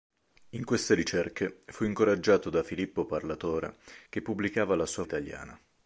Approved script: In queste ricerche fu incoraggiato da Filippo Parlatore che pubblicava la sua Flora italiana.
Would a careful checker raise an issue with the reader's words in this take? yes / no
yes